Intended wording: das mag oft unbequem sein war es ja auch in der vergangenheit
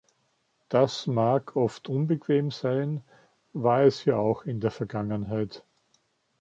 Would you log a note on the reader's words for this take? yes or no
no